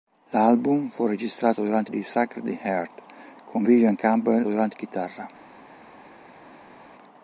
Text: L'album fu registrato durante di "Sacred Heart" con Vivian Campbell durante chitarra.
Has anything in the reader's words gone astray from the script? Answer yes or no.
no